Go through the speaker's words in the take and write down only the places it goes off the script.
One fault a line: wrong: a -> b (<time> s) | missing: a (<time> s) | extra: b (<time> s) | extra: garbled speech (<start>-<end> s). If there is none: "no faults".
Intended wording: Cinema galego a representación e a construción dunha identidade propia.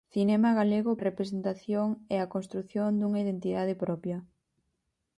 no faults